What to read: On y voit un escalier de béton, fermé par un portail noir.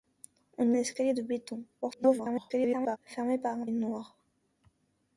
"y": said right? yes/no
no